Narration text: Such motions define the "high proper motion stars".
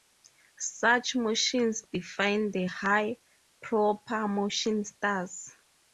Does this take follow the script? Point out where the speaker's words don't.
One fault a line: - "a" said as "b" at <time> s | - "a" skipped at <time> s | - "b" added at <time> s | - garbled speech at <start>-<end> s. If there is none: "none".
none